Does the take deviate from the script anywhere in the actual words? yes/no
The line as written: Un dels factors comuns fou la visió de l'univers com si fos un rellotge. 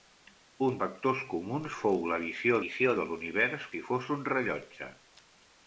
yes